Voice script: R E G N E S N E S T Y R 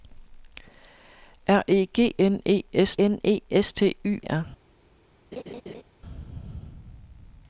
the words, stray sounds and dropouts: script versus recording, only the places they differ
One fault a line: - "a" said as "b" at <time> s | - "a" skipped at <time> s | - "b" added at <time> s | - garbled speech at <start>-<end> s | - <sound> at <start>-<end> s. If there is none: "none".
- laugh at 5.3-5.8 s